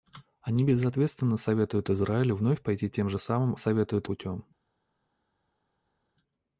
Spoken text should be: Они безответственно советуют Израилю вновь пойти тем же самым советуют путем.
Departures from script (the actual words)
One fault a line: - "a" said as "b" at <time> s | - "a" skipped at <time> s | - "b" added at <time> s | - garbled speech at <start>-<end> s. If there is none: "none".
none